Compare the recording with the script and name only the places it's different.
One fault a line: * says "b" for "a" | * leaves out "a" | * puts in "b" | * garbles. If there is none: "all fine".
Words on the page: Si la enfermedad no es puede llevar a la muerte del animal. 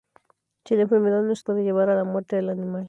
all fine